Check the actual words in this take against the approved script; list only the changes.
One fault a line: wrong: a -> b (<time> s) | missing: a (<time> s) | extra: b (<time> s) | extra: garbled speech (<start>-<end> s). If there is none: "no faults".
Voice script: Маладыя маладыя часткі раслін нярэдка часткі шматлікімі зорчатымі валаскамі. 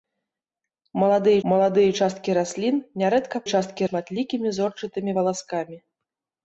no faults